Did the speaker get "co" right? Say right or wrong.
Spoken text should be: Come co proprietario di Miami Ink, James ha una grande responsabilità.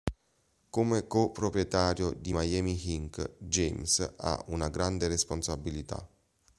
right